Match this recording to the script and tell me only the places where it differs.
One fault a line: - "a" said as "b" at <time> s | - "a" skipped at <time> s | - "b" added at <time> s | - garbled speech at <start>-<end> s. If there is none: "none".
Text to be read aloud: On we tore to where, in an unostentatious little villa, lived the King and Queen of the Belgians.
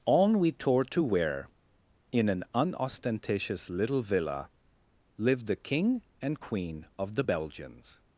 none